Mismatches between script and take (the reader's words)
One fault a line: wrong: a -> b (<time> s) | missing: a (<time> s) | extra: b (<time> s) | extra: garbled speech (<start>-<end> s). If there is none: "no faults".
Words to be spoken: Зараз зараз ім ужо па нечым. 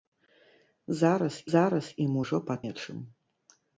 no faults